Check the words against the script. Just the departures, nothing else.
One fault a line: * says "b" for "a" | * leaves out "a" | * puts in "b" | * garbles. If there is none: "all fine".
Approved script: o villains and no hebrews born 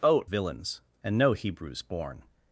all fine